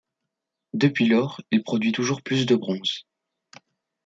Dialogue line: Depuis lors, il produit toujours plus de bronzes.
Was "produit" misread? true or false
false